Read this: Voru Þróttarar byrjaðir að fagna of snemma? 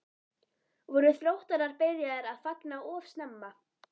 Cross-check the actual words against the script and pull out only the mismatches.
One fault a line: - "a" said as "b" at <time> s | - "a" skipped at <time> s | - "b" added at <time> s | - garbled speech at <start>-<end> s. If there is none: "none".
none